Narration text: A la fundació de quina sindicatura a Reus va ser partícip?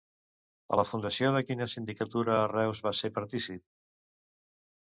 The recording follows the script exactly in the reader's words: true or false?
true